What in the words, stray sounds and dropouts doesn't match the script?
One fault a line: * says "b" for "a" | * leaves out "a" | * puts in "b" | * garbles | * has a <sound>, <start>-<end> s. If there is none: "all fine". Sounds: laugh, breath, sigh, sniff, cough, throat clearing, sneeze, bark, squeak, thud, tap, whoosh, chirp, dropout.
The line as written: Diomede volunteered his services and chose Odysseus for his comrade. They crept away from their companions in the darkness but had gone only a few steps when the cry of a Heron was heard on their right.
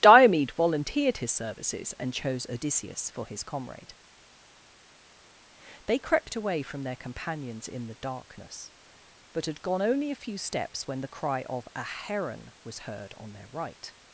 all fine